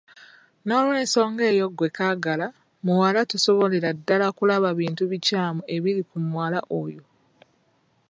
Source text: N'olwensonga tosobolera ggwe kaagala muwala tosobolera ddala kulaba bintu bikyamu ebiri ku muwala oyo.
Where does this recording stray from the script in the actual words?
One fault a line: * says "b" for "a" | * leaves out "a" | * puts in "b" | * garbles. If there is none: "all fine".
* says "eyo" for "tosobolera"